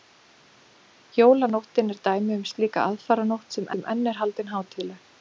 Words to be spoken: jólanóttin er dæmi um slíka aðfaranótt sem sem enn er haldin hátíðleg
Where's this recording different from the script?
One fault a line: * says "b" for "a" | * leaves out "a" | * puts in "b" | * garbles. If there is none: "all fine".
all fine